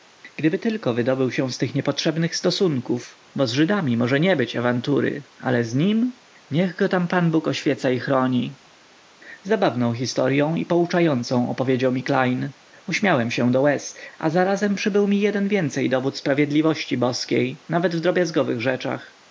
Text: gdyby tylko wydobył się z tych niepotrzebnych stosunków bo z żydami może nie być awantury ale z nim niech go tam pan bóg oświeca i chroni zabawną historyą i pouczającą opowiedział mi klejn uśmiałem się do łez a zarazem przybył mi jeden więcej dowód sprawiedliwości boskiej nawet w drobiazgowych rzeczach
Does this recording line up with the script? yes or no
yes